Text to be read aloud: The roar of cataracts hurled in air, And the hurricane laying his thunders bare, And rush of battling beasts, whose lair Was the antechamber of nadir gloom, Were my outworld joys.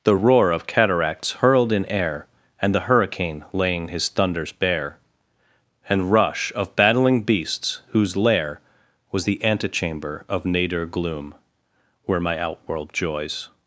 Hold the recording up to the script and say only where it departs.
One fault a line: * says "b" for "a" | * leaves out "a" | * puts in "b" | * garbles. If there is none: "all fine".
all fine